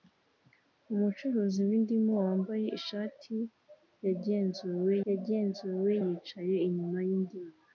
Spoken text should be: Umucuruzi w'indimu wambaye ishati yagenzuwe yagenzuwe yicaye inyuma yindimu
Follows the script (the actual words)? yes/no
yes